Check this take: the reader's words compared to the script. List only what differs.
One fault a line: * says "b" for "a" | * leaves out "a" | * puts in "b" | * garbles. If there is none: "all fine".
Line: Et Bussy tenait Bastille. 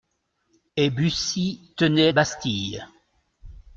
all fine